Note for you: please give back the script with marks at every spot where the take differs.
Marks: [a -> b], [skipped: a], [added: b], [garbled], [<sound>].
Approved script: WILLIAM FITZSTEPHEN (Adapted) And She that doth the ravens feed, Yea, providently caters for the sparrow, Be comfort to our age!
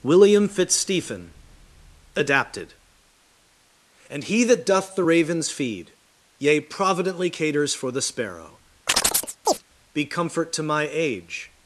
WILLIAM FITZSTEPHEN (Adapted) And [She -> He] that doth the ravens feed, Yea, providently caters for the sparrow, [chirp] Be comfort to [our -> my] age!